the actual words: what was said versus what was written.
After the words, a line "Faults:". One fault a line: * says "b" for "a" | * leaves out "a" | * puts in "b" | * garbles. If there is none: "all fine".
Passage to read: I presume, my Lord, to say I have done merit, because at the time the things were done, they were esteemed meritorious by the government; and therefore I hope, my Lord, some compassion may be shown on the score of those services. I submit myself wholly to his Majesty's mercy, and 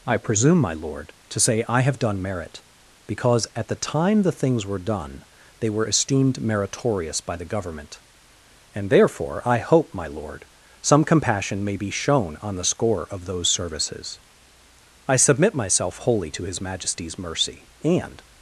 I presume, my Lord, to say I have done merit, because at the time the things were done, they were esteemed meritorious by the government; and therefore I hope, my Lord, some compassion may be shown on the score of those services. I submit myself wholly to his Majesty's mercy, and
Faults:
all fine